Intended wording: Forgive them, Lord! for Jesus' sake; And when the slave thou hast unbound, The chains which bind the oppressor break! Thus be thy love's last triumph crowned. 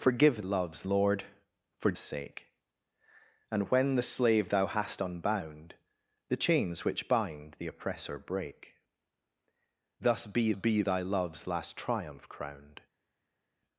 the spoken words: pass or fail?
fail